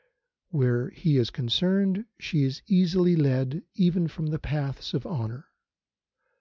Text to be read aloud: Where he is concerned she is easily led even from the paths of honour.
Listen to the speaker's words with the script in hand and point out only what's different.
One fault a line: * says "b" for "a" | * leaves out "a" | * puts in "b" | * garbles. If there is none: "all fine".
all fine